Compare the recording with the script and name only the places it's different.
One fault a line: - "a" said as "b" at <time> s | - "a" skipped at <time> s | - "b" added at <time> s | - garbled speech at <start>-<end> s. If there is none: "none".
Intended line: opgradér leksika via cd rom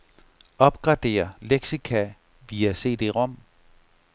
none